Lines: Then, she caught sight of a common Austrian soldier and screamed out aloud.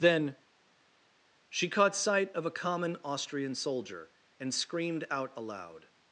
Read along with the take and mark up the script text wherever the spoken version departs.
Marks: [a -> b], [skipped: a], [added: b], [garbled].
Then, she caught sight of a common Austrian soldier and screamed out aloud.